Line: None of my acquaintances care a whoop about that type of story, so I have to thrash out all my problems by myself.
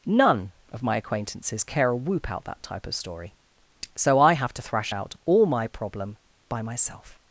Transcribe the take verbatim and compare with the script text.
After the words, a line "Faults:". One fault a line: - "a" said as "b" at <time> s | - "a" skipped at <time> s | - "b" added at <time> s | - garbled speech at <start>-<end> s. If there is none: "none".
None of my acquaintances care a whoop out that type of story, so I have to thrash out all my problem by myself.
Faults:
- "about" said as "out" at 2.3 s
- "problems" said as "problem" at 5.7 s